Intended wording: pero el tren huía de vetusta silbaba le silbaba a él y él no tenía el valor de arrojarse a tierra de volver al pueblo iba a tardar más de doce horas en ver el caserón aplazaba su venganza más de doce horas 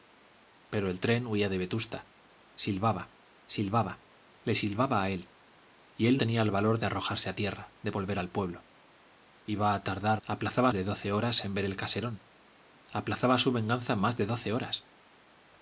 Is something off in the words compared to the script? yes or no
yes